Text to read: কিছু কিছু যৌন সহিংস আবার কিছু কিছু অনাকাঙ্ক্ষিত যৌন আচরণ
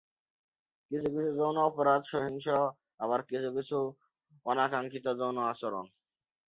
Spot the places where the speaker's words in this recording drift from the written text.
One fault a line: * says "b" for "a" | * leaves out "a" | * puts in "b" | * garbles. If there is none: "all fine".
* puts in "অপরাধ"